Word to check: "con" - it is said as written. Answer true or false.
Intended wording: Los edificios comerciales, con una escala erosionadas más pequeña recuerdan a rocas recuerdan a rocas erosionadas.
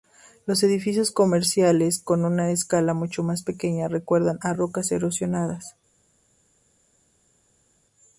true